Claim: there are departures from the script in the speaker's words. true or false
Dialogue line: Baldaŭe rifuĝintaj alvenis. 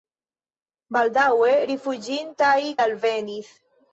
false